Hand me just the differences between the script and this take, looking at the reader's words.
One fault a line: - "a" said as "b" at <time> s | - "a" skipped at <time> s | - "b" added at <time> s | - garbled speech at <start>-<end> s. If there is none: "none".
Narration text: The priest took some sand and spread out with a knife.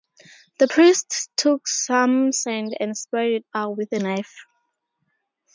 - "it" added at 3.3 s